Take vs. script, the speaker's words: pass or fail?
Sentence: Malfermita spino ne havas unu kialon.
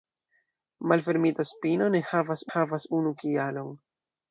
fail